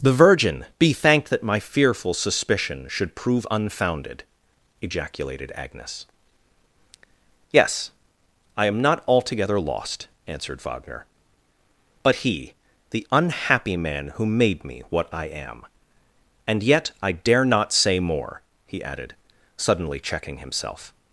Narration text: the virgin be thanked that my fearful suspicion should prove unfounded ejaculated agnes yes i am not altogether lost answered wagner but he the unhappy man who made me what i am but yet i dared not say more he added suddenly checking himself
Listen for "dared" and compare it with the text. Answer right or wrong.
wrong